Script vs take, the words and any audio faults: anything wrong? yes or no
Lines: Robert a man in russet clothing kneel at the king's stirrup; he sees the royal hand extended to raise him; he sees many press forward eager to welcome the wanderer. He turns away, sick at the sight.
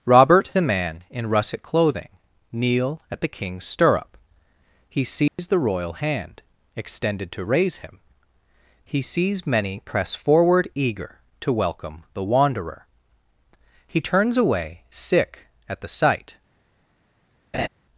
yes